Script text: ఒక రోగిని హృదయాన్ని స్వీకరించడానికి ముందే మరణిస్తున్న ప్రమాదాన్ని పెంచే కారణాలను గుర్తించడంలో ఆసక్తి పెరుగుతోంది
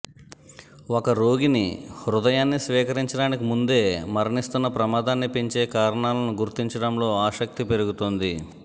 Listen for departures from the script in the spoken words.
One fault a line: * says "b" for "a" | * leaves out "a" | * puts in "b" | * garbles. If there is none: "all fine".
all fine